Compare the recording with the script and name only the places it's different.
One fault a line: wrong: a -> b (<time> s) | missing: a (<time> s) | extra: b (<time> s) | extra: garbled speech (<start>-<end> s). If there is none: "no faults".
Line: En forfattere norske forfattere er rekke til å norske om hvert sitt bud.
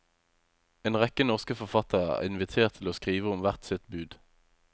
wrong: forfattere -> rekke (1.0 s)
wrong: rekke -> invitert (2.3 s)
wrong: norske -> skrive (3.0 s)